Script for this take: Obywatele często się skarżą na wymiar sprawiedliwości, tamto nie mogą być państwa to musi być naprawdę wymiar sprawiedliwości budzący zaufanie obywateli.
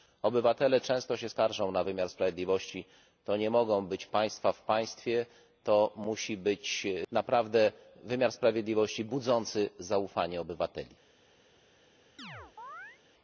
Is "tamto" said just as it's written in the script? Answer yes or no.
no